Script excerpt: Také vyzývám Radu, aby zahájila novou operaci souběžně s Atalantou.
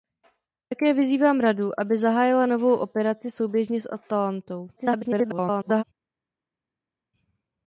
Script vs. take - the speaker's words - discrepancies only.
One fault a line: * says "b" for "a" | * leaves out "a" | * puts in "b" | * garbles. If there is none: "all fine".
* garbles